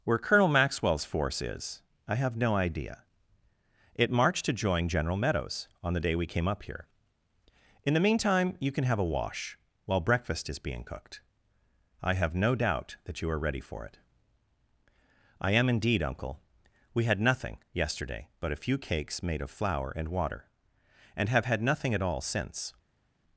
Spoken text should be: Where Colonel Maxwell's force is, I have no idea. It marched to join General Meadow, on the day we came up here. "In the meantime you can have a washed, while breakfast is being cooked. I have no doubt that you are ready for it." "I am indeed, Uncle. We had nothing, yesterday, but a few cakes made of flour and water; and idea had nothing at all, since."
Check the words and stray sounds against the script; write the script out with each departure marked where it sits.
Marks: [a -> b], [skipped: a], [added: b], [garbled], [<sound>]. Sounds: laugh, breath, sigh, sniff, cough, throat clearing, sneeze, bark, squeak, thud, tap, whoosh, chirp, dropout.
Where Colonel Maxwell's force is, I have no idea. It marched to join General [Meadow, -> Meadows] on the day we came up here. "In the meantime you can have a [washed, -> wash] while breakfast is being cooked. I have no doubt that you are ready for it." "I am indeed, Uncle. We had nothing, yesterday, but a few cakes made of flour and water; and [idea -> have] had nothing at all, since."